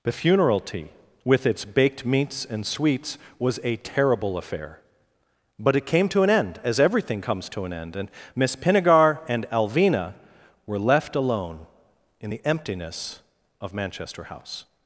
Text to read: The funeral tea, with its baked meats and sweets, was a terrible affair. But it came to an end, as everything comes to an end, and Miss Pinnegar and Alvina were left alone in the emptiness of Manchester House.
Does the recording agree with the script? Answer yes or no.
yes